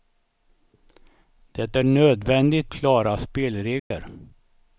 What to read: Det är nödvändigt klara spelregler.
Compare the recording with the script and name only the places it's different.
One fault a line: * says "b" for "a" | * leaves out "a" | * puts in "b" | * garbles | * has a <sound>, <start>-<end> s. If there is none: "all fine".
* has a dropout, 3.8-3.9 s